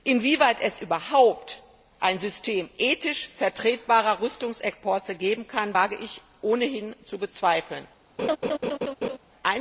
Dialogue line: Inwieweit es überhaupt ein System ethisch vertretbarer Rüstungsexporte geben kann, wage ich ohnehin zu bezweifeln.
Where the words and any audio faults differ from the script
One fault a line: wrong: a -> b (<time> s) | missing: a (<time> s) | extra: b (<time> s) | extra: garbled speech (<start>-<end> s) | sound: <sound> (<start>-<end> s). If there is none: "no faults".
sound: laugh (8.2-9.2 s)